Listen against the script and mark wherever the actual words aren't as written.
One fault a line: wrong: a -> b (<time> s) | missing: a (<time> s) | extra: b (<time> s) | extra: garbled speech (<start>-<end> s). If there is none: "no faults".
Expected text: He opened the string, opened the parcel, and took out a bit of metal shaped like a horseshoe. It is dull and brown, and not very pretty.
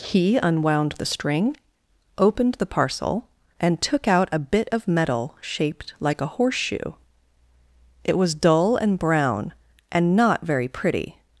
wrong: opened -> unwound (0.4 s)
wrong: is -> was (8.2 s)